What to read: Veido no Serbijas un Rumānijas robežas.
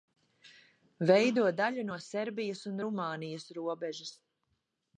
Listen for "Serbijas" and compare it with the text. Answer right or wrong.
right